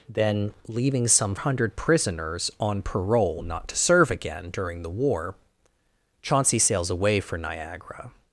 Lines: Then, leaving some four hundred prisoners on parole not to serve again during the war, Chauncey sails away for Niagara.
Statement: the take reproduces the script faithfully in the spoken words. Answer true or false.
false